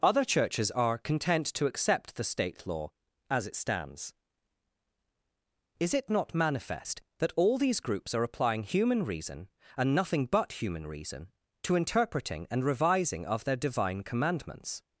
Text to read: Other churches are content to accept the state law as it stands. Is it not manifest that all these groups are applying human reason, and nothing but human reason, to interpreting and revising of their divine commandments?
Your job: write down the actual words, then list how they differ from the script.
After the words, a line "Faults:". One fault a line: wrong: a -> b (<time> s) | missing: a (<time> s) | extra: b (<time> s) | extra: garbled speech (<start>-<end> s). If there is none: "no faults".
Other churches are content to accept the state law as it stands. Is it not manifest that all these groups are applying human reason, and nothing but human reason, to interpreting and revising of their divine commandments?
Faults:
no faults